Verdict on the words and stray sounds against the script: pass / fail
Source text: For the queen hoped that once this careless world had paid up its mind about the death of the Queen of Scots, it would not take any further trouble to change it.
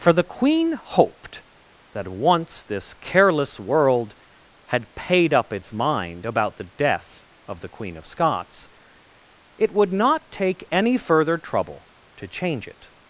pass